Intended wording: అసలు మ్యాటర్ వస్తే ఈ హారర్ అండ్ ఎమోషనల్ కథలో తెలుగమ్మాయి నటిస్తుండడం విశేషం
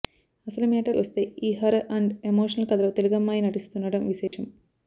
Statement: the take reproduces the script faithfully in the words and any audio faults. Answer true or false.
false